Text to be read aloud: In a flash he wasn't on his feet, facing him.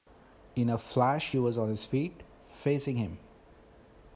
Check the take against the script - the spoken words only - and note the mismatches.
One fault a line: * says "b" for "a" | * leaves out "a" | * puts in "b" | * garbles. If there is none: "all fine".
* says "was" for "wasn't"